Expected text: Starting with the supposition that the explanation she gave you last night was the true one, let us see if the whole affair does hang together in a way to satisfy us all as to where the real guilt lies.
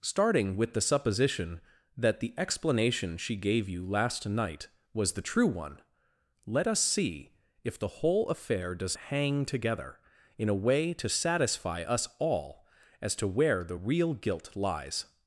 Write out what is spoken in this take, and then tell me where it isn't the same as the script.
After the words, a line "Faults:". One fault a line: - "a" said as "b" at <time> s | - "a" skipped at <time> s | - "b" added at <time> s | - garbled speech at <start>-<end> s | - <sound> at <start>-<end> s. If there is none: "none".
Starting with the supposition that the explanation she gave you last night was the true one, let us see if the whole affair does hang together in a way to satisfy us all as to where the real guilt lies.
Faults:
none